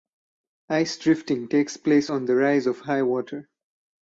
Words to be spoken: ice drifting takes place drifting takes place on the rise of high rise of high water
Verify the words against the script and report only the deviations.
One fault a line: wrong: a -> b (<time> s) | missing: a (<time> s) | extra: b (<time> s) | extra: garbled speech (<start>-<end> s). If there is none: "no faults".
missing: drifting takes place (2.1 s)
missing: rise of high (3.0 s)